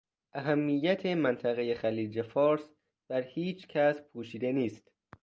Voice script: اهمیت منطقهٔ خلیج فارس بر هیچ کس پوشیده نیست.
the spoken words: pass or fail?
pass